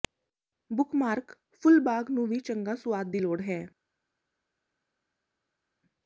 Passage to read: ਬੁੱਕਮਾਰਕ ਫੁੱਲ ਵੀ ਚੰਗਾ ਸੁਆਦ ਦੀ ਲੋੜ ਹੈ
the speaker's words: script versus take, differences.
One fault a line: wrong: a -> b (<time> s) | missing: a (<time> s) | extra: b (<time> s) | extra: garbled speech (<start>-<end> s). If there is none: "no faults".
extra: ਬਾਗ ਨੂੰ (1.8 s)